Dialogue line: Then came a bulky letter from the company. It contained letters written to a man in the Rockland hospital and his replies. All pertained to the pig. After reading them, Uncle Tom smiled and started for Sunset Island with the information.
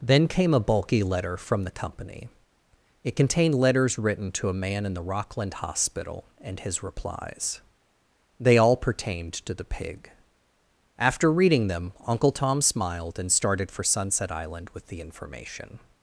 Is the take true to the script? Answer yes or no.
no